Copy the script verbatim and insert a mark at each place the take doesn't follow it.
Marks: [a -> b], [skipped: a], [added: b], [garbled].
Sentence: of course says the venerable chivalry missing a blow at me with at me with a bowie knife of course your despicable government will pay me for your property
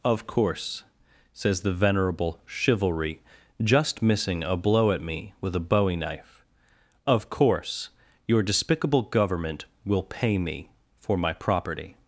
of course says the venerable chivalry [added: just] missing a blow at me with [skipped: at me with] a bowie knife of course your despicable government will pay me for [your -> my] property